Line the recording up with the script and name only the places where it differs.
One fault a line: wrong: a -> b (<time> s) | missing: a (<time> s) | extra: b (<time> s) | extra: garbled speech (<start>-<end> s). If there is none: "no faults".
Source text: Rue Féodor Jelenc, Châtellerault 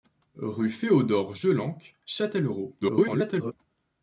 extra: garbled speech (2.8-3.5 s)